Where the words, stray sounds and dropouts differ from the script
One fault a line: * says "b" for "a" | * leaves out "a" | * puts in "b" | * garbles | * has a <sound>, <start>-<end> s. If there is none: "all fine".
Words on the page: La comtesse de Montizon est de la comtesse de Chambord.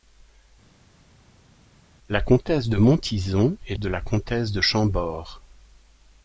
all fine